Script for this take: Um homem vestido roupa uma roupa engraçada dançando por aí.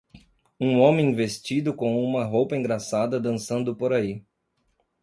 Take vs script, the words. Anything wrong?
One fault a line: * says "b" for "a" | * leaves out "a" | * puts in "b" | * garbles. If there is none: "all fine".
* says "com" for "roupa"